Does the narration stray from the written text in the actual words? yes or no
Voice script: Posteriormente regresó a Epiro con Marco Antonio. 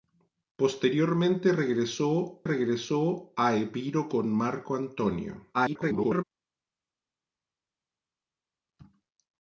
yes